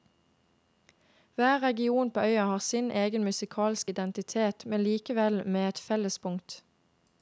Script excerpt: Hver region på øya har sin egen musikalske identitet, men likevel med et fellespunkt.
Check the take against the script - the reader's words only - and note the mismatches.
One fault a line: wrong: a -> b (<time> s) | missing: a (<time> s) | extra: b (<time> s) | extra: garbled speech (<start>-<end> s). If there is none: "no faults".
no faults